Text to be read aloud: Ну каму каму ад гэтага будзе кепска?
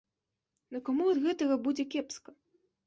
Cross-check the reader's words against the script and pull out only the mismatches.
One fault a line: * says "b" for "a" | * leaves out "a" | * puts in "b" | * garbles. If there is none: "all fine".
* leaves out "каму"